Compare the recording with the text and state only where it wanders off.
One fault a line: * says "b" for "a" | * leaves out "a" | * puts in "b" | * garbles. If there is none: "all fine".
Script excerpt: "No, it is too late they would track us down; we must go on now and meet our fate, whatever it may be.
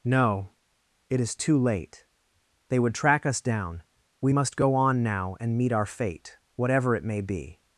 all fine